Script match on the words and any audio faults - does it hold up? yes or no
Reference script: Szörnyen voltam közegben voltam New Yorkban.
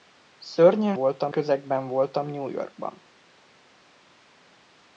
yes